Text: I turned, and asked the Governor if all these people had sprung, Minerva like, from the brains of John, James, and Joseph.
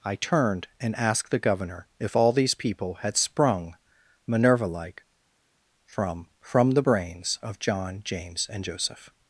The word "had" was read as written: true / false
true